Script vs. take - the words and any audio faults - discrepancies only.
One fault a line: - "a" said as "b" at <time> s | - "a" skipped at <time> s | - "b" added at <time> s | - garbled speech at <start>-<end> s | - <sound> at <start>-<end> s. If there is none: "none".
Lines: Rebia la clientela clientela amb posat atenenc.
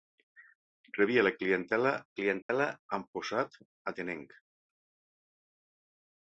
- dropout at 2.4-2.5 s